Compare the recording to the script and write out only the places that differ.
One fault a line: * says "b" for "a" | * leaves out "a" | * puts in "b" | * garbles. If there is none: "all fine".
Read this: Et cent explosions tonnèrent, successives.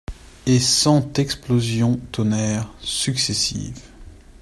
all fine